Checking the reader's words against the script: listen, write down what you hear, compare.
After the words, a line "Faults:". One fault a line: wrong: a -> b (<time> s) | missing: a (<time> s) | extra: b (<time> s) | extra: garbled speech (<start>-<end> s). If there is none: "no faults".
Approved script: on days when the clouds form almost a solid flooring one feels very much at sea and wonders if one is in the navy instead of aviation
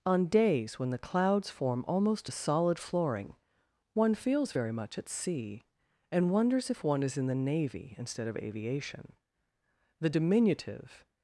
on days when the clouds form almost a solid flooring one feels very much at sea and wonders if one is in the navy instead of aviation the diminutive
Faults:
extra: the diminutive (10.0 s)